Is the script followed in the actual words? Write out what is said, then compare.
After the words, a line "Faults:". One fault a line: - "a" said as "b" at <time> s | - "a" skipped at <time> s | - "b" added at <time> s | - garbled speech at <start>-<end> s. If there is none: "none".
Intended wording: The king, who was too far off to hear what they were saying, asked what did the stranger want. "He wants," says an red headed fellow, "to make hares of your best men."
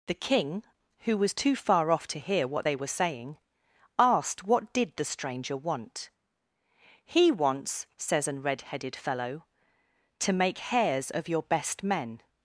The king, who was too far off to hear what they were saying, asked what did the stranger want. "He wants," says an red headed fellow, "to make hares of your best men."
Faults:
none